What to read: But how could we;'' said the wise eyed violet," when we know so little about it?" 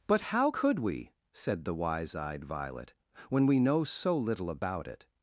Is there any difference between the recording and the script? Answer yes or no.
no